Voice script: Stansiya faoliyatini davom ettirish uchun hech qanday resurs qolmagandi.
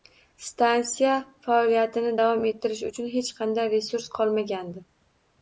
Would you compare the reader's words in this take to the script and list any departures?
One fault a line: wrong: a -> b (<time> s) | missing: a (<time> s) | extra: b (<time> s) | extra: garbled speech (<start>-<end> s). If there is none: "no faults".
no faults